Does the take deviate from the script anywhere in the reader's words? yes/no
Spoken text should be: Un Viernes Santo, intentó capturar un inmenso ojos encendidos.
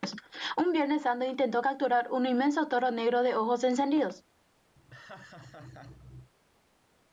yes